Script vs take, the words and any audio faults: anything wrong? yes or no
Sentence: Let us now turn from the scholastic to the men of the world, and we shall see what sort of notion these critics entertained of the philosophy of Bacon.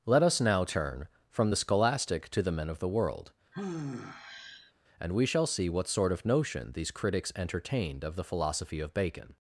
yes